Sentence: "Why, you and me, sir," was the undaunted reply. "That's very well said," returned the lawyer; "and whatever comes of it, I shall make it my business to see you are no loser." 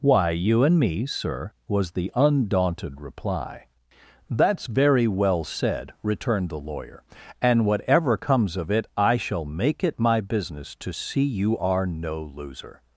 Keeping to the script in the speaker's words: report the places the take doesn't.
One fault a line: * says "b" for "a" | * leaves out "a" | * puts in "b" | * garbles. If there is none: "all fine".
all fine